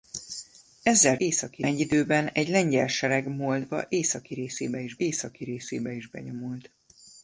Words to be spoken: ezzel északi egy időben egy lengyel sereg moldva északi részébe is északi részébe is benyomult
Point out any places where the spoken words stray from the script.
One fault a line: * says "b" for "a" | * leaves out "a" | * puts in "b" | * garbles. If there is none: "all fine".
all fine